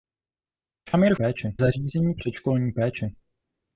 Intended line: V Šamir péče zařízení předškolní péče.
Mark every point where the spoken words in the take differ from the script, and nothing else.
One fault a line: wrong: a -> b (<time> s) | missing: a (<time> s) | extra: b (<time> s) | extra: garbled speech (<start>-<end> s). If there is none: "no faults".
no faults